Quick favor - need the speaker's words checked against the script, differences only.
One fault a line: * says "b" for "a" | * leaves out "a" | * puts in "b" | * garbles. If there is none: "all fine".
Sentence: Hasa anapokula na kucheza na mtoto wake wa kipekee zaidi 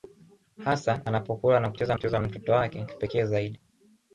* puts in "kucheza"
* leaves out "wa"